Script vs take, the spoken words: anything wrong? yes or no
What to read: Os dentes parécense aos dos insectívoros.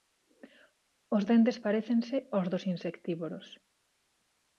no